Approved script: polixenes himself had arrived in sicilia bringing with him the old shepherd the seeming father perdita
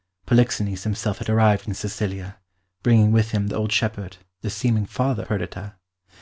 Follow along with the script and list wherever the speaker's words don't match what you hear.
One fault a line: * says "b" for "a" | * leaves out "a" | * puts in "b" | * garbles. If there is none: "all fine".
all fine